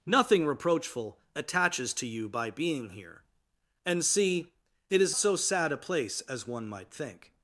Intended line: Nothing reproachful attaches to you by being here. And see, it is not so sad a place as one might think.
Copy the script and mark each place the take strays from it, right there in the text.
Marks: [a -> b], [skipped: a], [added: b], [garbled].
Nothing reproachful attaches to you by being here. And see, it is [skipped: not] so sad a place as one might think.